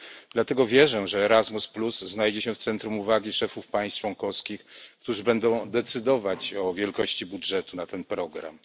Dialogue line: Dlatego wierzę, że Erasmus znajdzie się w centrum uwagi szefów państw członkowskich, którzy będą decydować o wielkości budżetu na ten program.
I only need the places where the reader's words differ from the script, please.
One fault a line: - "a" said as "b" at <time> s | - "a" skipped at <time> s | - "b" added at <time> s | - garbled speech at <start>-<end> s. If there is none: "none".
none